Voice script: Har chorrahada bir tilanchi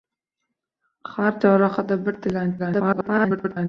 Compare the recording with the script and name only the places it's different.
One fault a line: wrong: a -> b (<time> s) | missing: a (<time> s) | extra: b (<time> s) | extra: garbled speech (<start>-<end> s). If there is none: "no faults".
extra: garbled speech (2.6-3.7 s)